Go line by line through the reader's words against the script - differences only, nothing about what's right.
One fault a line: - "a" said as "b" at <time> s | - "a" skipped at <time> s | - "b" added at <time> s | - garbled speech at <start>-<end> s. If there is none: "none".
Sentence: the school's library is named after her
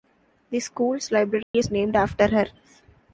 none